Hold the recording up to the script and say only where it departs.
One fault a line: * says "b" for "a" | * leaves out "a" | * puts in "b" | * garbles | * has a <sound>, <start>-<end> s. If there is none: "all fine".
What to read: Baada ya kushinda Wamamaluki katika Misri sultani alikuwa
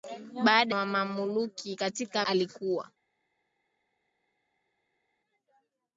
* leaves out "ya kushinda"
* leaves out "Misri sultani"